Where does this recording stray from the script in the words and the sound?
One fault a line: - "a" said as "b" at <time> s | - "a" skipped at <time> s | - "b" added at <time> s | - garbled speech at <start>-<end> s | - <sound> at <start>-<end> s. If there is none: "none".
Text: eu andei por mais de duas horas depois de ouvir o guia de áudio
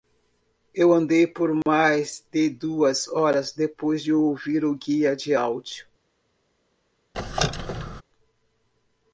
- dropout at 1.6-1.7 s
- squeak at 7.1-8.0 s